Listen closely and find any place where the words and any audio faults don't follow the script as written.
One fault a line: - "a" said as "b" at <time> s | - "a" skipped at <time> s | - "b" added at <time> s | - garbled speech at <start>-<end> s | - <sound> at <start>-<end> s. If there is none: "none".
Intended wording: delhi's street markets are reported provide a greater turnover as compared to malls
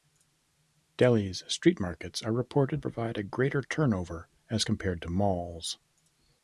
none